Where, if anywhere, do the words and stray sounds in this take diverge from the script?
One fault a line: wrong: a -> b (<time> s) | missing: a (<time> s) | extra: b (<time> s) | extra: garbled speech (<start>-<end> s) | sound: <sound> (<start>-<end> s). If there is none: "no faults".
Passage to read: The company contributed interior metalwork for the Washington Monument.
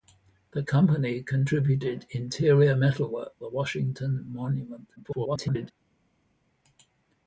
missing: for (3.4 s)
extra: garbled speech (5.0-5.7 s)